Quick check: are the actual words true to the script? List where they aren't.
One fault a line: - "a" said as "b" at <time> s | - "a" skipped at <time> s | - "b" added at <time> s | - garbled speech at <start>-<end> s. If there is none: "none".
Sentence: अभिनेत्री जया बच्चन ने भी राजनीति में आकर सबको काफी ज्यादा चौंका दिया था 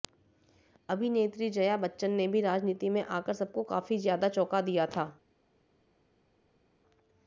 none